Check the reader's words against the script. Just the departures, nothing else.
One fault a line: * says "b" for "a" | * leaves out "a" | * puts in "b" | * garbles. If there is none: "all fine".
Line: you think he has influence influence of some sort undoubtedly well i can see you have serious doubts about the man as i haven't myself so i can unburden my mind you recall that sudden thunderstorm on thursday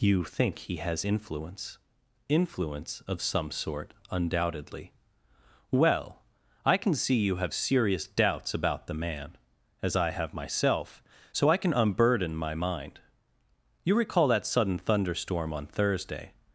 * says "have" for "haven't"